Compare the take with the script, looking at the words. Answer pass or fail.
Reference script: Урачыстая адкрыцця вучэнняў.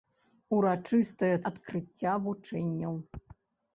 pass